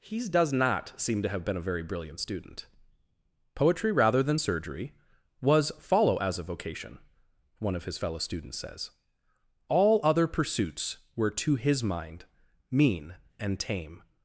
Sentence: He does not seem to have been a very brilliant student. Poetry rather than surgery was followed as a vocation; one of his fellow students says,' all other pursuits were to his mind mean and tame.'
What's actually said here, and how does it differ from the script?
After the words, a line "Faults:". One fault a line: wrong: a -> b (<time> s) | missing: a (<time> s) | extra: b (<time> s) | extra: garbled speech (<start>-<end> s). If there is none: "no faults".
He does not seem to have been a very brilliant student. Poetry rather than surgery was follow as a vocation; one of his fellow students says,' all other pursuits were to his mind mean and tame.'
Faults:
wrong: followed -> follow (5.8 s)